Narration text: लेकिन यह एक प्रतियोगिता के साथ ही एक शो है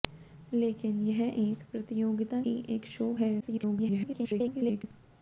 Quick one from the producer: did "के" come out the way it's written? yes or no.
no